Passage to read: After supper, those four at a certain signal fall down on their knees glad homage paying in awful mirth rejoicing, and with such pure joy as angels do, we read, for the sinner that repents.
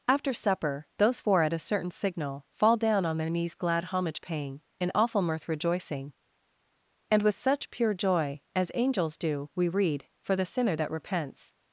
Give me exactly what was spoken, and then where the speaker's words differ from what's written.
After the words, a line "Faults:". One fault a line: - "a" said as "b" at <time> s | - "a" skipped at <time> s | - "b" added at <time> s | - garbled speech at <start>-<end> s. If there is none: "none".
After supper, those four at a certain signal fall down on their knees glad homage paying in awful mirth rejoicing, and with such pure joy as angels do, we read, for the sinner that repents.
Faults:
none